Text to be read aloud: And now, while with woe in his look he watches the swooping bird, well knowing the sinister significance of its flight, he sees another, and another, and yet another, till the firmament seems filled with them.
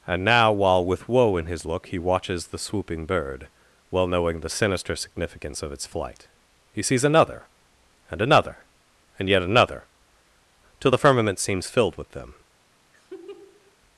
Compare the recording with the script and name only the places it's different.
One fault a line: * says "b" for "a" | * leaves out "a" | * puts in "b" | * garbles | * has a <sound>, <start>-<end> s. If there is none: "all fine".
* has a laugh, 12.9-13.8 s